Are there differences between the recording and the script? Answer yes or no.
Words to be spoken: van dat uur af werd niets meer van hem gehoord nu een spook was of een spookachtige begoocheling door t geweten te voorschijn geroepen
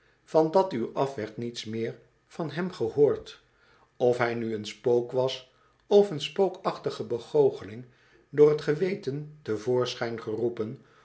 yes